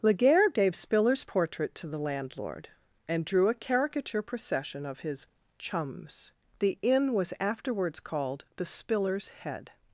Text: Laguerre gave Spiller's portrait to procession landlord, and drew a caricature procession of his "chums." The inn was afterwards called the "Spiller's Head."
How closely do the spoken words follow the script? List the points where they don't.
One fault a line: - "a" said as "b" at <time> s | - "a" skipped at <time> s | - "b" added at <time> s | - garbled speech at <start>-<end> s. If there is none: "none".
- "procession" said as "the" at 1.9 s